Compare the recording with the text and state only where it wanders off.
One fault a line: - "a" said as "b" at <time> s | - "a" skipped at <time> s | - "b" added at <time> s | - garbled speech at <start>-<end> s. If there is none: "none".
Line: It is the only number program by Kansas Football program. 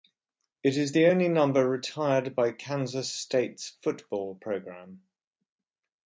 - "program" said as "retired" at 1.7 s
- "State's" added at 3.1 s